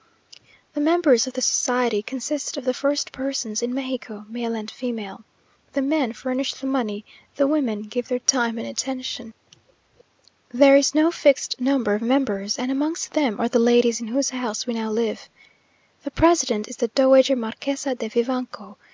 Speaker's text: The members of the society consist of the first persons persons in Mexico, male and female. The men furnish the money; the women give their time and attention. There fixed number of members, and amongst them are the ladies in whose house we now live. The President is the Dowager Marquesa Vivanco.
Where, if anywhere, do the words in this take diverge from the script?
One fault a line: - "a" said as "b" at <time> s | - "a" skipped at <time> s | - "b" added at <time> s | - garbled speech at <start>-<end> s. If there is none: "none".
- "persons" skipped at 3.6 s
- "is no" added at 10.7 s
- "de" added at 18.0 s